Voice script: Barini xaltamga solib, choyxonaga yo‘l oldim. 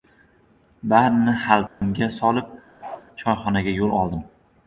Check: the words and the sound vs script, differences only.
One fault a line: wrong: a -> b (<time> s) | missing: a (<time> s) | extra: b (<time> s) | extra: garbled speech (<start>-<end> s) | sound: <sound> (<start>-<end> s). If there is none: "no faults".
sound: dropout (1.7-1.8 s)
sound: bark (2.8-3.1 s)